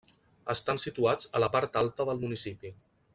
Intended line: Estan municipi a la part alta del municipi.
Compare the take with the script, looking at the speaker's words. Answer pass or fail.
fail